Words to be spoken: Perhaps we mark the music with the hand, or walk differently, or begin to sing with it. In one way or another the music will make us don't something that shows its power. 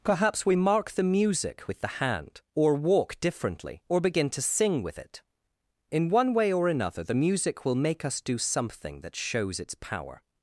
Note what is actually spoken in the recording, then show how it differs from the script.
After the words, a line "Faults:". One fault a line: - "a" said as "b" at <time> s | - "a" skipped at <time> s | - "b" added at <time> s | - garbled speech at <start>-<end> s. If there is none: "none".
Perhaps we mark the music with the hand, or walk differently, or begin to sing with it. In one way or another the music will make us do something that shows its power.
Faults:
- "don't" said as "do" at 8.2 s